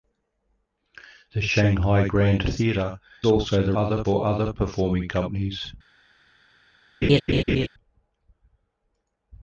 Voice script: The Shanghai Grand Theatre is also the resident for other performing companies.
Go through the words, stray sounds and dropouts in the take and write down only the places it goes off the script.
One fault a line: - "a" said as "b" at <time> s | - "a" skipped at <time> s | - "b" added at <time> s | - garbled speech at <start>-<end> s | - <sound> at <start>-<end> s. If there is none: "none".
- "is" skipped at 3.0 s
- "resident" said as "other" at 3.8 s
- laugh at 7.0-7.7 s